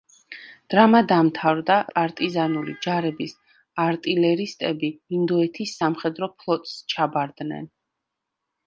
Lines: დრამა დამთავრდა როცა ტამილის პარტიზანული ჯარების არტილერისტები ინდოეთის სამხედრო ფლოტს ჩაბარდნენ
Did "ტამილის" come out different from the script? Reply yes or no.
yes